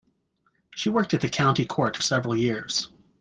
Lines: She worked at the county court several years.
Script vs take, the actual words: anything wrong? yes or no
no